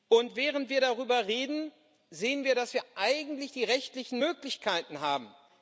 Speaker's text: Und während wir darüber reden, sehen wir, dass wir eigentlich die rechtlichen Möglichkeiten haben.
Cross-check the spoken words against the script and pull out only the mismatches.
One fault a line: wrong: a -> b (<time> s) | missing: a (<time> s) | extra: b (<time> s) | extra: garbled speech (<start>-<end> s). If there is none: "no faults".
no faults